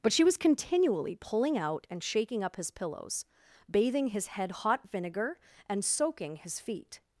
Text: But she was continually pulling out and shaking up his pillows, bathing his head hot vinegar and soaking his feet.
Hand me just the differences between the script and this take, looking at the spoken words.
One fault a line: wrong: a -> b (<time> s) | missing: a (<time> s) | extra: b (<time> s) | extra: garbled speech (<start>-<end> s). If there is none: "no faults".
no faults